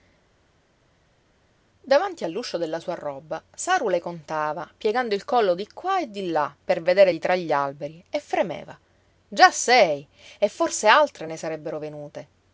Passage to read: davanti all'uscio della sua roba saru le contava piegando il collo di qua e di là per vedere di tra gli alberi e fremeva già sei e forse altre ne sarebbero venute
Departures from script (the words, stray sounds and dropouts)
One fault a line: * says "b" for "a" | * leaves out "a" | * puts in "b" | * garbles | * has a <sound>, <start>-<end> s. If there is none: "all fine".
all fine